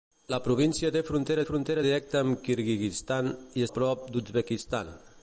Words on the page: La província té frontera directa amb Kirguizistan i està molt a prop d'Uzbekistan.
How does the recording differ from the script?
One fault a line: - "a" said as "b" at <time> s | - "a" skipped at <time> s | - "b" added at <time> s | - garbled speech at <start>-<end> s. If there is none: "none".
- "frontera" added at 1.5 s
- "està molt" skipped at 3.7 s